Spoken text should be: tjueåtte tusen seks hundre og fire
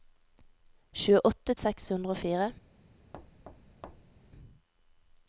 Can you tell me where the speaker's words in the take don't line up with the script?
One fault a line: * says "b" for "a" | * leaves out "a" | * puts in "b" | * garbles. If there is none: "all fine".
* leaves out "tusen"